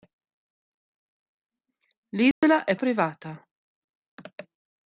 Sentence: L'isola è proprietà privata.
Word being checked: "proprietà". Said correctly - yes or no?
no